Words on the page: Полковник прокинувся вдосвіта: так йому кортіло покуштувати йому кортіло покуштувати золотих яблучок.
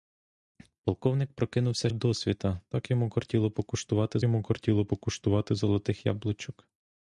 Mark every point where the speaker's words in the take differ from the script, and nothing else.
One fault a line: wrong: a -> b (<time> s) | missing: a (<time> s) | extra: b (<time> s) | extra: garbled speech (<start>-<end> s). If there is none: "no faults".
no faults